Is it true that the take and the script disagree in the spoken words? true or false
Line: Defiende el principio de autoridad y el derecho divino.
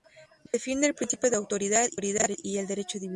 false